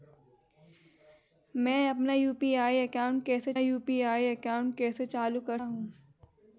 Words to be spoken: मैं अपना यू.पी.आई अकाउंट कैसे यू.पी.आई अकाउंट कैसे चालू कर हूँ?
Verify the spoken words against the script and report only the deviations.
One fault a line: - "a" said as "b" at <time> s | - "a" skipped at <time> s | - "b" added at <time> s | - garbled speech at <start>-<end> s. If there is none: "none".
none